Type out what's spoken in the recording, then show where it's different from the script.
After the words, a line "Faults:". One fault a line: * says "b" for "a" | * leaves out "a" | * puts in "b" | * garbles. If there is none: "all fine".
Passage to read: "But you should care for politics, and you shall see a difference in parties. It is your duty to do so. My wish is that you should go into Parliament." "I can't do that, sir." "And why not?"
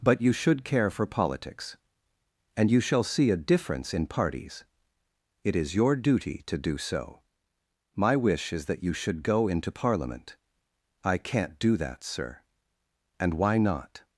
"But you should care for politics, and you shall see a difference in parties. It is your duty to do so. My wish is that you should go into Parliament." "I can't do that, sir." "And why not?"
Faults:
all fine